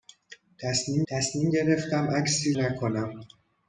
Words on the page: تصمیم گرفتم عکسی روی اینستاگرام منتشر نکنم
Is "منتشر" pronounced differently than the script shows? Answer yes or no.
yes